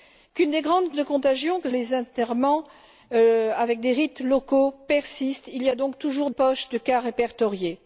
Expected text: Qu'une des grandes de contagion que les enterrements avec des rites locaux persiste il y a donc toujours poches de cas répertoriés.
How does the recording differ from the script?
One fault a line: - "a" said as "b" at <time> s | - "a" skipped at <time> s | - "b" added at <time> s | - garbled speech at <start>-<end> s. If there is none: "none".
none